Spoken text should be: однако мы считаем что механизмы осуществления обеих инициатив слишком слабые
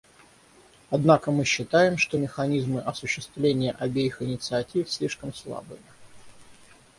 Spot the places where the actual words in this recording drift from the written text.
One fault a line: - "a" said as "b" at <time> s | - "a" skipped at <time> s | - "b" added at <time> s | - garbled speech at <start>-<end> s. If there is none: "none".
none